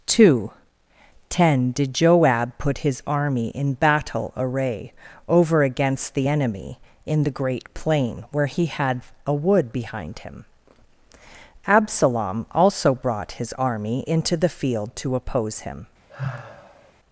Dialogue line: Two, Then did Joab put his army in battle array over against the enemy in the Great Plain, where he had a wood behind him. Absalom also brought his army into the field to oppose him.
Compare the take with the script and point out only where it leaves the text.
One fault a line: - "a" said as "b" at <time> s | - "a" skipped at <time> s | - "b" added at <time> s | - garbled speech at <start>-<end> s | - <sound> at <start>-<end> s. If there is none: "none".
- "Then" said as "Ten" at 1.3 s
- sigh at 16.1-16.9 s